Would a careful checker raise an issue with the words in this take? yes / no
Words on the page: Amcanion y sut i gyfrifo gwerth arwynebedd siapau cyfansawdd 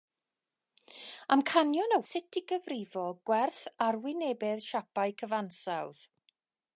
no